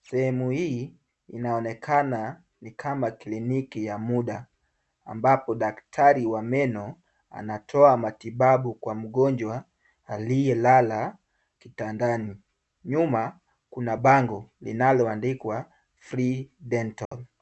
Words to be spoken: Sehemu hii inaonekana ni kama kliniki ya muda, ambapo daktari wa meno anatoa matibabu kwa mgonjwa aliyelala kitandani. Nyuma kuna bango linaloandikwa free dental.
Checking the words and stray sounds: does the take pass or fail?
fail